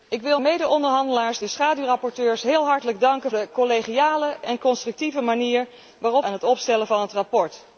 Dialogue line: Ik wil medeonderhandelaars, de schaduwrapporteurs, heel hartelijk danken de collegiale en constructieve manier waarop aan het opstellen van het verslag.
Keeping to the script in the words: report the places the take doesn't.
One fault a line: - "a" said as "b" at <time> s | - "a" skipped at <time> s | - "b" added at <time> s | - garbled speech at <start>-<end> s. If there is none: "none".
none